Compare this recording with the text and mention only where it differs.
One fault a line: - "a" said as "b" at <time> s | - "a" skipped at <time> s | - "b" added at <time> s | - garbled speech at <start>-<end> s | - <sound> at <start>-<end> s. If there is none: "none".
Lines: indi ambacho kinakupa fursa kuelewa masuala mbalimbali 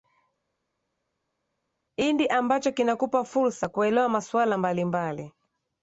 none